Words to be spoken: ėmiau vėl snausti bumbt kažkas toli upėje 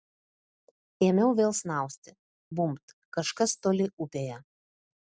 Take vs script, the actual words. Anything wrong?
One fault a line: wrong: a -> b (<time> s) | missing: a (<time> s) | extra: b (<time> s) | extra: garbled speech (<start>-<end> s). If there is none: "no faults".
no faults